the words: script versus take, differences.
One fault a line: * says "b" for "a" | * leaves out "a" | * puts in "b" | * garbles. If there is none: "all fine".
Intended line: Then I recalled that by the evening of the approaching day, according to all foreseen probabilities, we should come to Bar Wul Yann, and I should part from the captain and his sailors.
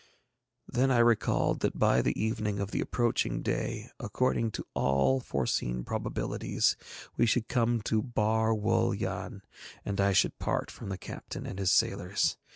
all fine